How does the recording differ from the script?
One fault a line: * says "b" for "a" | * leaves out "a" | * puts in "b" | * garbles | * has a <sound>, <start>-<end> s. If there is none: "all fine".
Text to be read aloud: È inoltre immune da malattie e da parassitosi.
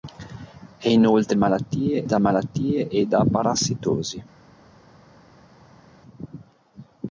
* says "malattie" for "immune"